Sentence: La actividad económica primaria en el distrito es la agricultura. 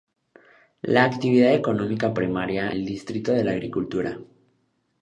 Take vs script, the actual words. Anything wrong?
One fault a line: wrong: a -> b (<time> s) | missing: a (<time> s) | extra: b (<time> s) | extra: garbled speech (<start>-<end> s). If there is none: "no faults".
missing: en (2.7 s)